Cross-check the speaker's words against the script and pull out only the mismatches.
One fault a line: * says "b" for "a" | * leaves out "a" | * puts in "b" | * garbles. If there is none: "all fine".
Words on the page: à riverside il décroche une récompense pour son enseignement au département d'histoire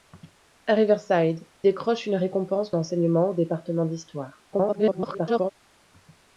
* leaves out "il"
* leaves out "pour son"
* garbles